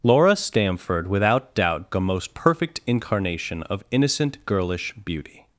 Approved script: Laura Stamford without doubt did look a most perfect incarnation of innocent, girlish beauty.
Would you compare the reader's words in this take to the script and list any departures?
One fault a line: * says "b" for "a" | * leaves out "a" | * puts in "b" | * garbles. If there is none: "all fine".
* leaves out "did look"